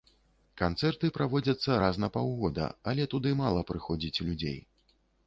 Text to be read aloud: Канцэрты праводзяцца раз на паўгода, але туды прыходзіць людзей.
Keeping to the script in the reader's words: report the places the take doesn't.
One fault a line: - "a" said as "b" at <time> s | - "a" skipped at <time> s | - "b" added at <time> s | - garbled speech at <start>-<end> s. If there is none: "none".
- "мала" added at 3.4 s